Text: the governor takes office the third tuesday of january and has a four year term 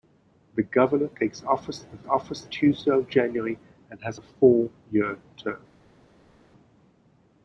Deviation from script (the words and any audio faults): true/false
true